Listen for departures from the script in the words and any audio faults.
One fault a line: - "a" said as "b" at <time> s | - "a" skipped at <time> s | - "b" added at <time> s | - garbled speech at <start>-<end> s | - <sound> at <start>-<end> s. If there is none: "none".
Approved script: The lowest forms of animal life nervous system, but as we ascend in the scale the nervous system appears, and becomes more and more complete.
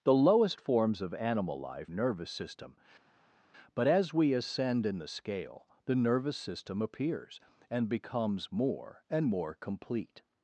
none